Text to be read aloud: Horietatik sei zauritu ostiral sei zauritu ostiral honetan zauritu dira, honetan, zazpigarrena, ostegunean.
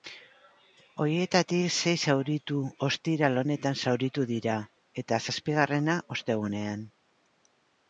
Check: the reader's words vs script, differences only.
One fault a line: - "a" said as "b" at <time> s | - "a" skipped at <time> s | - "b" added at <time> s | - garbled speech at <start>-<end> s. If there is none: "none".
- "sei zauritu ostiral" skipped at 3.4 s
- "honetan" said as "eta" at 5.0 s